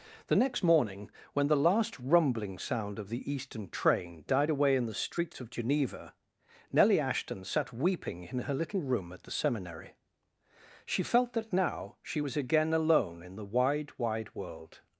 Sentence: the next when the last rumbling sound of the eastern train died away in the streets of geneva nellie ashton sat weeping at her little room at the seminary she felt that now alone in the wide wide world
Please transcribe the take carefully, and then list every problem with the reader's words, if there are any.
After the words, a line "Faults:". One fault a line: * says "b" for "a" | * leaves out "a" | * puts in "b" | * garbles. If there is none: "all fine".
the next morning when the last rumbling sound of the eastern train died away in the streets of geneva nellie ashton sat weeping in her little room at the seminary she felt that now she was again alone in the wide wide world
Faults:
* puts in "morning"
* says "in" for "at"
* puts in "she was again"